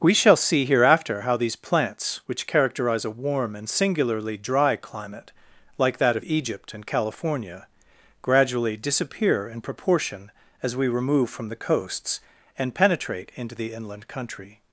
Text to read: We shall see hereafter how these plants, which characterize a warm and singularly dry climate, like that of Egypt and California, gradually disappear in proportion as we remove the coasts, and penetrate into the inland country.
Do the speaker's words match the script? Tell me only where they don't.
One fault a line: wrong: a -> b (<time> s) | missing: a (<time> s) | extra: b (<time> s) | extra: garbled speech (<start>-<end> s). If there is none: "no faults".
extra: from (11.3 s)